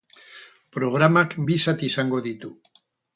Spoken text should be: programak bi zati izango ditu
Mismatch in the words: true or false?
false